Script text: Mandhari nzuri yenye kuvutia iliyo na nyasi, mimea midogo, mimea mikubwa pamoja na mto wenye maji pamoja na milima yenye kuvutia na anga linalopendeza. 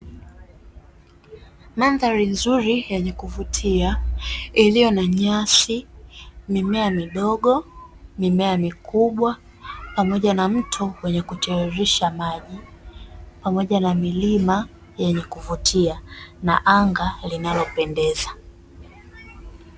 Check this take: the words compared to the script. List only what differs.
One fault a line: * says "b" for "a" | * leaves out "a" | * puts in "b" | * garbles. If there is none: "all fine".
* puts in "kutiririsha"